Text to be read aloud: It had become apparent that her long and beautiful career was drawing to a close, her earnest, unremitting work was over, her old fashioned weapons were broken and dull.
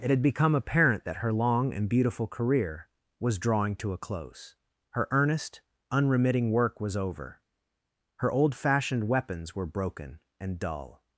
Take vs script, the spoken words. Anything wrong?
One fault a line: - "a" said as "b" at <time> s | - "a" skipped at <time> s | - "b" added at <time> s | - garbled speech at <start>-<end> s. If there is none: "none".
none